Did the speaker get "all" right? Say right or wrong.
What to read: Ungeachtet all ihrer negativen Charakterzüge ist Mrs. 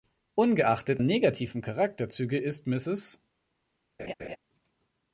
wrong